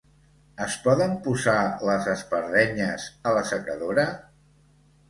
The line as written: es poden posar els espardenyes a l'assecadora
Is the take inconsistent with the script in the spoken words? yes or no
yes